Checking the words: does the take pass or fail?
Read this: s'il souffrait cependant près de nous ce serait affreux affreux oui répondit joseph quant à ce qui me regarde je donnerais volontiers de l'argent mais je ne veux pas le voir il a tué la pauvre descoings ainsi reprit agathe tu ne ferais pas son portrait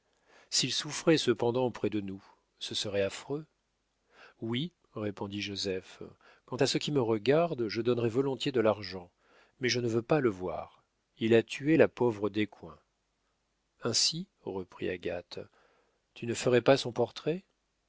fail